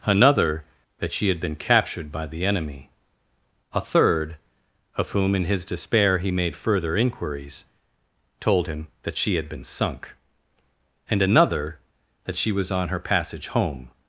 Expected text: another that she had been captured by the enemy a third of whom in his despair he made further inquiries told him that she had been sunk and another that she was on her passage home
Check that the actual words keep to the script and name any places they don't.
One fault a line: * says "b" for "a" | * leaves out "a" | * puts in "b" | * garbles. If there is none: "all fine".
all fine